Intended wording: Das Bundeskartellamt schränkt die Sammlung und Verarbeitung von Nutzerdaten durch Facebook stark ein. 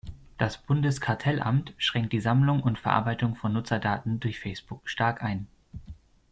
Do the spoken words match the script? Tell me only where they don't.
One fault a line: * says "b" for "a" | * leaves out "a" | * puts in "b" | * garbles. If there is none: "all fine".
all fine